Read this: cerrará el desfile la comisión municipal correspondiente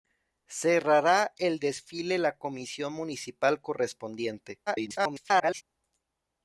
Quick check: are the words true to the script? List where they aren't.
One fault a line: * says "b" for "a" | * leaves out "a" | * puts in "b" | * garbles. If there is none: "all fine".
* garbles